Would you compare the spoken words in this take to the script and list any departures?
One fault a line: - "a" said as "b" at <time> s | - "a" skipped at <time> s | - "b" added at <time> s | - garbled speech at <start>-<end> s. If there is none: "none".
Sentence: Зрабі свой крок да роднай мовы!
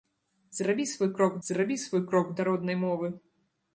- "зрабі свой крок" added at 1.5 s